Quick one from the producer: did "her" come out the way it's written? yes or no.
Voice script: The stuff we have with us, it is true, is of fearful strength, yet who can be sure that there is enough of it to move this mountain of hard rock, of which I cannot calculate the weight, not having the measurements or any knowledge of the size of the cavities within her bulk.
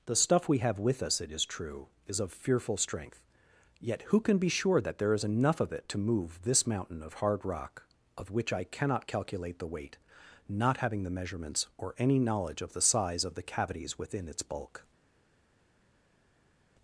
no